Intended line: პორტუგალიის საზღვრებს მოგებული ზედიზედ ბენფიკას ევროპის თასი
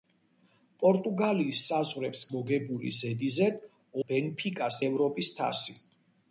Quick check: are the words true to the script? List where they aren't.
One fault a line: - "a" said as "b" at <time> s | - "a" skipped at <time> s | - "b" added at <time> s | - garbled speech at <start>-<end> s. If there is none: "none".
none